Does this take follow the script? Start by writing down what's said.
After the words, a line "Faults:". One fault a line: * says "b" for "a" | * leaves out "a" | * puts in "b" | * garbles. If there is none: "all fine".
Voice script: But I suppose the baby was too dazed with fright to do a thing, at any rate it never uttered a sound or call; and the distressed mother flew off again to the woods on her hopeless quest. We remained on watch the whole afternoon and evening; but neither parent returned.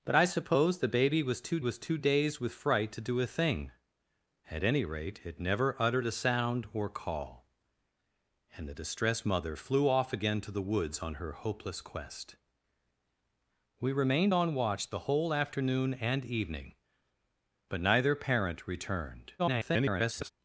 But I suppose the baby was too was too dazed with fright to do a thing, at any rate it never uttered a sound or call; and the distressed mother flew off again to the woods on her hopeless quest. We remained on watch the whole afternoon and evening; but neither parent returned. [garbled]
Faults:
* puts in "was too"
* garbles